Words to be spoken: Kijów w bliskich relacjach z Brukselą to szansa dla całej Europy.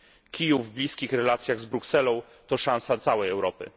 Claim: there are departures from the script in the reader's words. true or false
true